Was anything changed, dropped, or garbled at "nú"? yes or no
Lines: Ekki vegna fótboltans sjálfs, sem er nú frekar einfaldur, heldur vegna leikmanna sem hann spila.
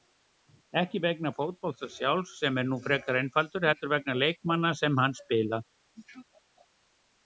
no